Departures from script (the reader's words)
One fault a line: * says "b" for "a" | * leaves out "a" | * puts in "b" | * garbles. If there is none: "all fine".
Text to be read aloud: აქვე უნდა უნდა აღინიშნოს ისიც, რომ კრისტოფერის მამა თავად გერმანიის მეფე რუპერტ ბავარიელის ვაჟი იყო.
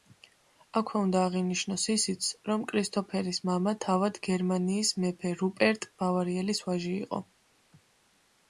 * leaves out "უნდა"